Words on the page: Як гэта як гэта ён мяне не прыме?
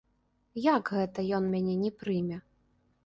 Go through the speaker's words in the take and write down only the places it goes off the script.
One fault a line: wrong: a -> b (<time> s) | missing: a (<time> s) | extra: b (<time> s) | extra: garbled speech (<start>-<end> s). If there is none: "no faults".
missing: як гэта (1.2 s)